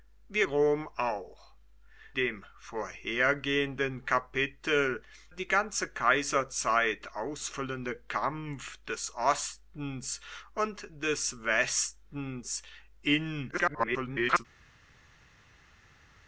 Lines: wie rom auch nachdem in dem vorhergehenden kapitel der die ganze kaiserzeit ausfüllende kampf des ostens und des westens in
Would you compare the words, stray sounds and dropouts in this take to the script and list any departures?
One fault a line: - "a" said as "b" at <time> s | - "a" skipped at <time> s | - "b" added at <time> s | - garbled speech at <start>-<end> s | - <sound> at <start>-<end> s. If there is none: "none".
- "nachdem in" skipped at 1.5 s
- "der" skipped at 5.0 s
- garbled speech at 13.5-14.5 s